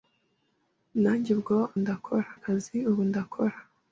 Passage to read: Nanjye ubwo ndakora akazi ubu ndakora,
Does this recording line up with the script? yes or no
yes